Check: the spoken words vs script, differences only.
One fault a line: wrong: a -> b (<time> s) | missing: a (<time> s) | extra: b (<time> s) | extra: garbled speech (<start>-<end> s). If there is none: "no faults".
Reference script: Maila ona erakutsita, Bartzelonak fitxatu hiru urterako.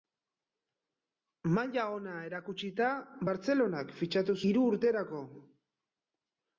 no faults